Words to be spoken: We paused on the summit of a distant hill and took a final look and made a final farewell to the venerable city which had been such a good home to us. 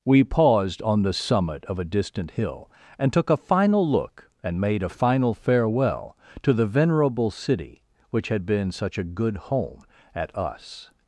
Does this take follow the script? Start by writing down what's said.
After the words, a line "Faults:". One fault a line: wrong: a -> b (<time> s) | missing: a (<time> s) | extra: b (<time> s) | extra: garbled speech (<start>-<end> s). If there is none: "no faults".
We paused on the summit of a distant hill and took a final look and made a final farewell to the venerable city which had been such a good home at us.
Faults:
wrong: to -> at (10.1 s)